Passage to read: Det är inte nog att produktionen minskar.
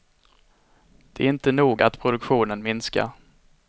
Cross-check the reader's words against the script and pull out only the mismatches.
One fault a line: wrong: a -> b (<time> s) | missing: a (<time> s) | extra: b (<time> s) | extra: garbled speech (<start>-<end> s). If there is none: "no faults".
no faults